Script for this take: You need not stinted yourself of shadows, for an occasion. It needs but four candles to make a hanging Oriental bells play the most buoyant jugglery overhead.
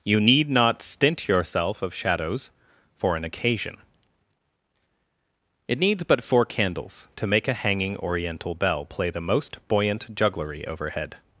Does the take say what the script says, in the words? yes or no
no